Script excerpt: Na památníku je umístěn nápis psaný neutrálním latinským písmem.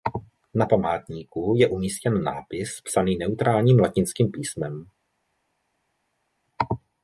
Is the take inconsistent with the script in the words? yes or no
no